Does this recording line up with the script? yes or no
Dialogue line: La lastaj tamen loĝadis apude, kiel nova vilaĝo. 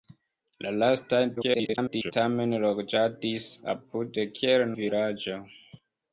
no